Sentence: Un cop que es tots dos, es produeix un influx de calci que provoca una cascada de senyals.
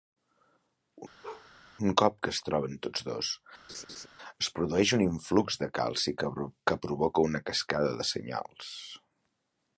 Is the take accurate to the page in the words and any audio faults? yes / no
no